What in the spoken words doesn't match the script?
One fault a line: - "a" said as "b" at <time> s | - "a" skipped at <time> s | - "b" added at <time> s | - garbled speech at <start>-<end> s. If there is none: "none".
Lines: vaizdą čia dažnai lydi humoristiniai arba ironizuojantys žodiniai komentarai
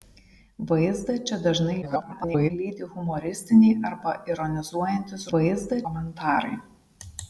- garbled speech at 1.8-2.5 s
- "žodiniai" said as "vaizdą" at 5.3 s